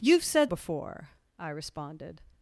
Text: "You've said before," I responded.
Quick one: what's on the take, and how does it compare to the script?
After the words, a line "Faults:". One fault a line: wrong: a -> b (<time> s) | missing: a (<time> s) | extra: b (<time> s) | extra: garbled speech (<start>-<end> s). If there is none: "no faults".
"You've said before," I responded.
Faults:
no faults